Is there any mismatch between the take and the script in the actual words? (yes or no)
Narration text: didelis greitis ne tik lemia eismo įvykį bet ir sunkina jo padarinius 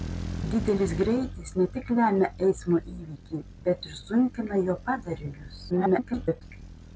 yes